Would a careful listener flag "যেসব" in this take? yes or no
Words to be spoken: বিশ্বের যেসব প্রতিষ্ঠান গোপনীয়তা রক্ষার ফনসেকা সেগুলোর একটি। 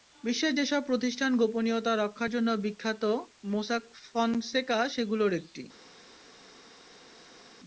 no